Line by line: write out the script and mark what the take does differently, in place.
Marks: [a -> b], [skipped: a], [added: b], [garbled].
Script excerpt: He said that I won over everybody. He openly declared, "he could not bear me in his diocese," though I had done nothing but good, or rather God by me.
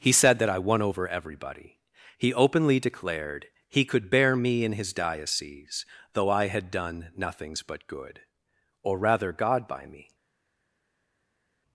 He said that I won over everybody. He openly declared, "he could [skipped: not] bear me in his diocese," though I had done [nothing -> nothings] but good, or rather God by me.